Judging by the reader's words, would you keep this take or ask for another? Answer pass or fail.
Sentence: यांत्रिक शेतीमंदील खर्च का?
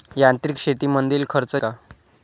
pass